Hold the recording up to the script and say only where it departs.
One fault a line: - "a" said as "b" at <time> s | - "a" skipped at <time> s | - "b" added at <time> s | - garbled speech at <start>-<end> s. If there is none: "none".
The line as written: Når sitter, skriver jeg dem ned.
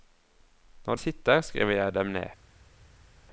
none